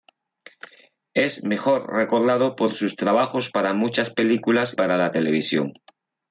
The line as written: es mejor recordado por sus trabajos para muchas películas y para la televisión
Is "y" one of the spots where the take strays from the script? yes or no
yes